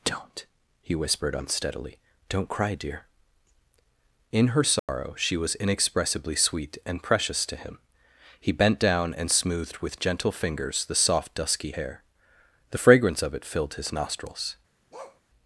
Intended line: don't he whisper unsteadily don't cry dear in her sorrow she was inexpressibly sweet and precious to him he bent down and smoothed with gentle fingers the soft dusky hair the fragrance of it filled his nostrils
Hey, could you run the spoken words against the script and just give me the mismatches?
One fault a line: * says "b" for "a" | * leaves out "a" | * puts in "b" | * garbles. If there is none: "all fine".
* says "whispered" for "whisper"